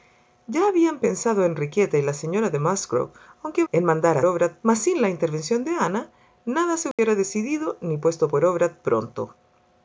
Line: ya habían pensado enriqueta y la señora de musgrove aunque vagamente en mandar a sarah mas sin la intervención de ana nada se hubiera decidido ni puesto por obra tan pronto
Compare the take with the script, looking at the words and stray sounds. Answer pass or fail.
fail